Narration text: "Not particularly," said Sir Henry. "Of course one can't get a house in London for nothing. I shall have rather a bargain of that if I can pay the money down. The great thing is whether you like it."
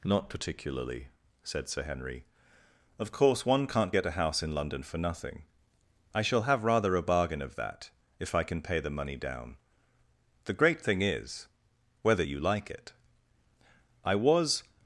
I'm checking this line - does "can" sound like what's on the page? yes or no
yes